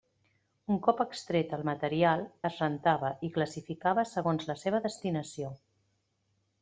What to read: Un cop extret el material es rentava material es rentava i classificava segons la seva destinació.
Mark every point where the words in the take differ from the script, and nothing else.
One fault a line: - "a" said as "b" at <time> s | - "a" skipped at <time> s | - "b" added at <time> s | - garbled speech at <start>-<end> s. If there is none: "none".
- "material es rentava" skipped at 3.1 s